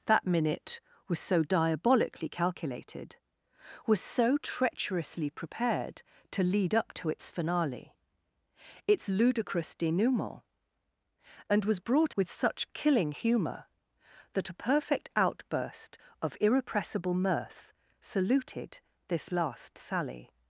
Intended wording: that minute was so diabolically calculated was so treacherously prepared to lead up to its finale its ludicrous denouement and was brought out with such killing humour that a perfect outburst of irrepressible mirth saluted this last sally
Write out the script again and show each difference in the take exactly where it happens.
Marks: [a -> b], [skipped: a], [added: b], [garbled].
that minute was so diabolically calculated was so treacherously prepared to lead up to its finale its ludicrous denouement and was brought [skipped: out] with such killing humour that a perfect outburst of irrepressible mirth saluted this last sally